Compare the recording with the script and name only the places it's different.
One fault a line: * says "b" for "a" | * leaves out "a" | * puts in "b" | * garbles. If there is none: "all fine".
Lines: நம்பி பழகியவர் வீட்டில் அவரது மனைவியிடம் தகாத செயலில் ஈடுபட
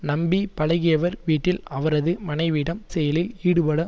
* leaves out "தகாத"